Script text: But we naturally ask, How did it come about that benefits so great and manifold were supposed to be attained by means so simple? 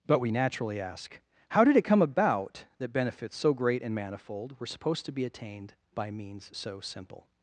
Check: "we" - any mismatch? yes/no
no